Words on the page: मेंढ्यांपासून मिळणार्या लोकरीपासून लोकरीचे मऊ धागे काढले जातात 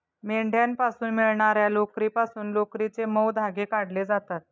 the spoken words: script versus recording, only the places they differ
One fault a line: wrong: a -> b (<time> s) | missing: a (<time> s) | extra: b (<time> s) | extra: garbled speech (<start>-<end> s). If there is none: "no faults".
no faults